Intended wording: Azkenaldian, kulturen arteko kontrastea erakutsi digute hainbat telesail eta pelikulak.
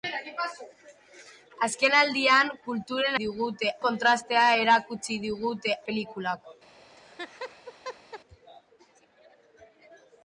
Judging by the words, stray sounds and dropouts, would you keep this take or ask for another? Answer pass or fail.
fail